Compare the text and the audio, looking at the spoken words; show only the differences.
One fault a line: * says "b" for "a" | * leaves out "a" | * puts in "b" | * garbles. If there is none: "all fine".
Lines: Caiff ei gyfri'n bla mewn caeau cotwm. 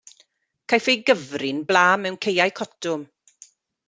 all fine